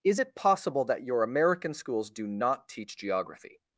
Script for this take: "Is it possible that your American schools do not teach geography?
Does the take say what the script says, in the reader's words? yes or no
yes